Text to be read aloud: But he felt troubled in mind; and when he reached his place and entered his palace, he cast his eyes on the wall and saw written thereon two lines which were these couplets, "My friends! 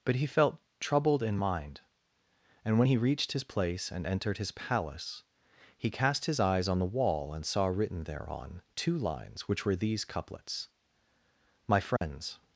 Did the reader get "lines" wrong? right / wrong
right